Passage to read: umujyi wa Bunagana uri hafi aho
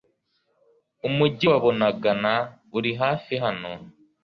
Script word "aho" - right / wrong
wrong